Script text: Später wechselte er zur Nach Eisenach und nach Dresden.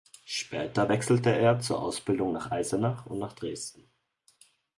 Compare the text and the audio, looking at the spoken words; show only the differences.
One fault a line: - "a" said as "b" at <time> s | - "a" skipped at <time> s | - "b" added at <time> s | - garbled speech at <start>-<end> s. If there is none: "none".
- "Ausbildung" added at 1.8 s